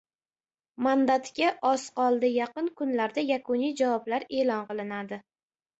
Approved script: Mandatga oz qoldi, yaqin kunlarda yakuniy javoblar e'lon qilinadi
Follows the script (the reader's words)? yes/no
yes